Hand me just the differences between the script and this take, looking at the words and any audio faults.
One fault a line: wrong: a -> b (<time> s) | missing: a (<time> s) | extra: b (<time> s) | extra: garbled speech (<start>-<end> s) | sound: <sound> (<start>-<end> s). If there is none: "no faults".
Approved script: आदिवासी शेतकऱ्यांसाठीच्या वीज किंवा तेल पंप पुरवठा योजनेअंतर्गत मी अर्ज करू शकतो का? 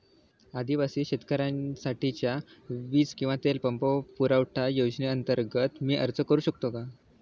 no faults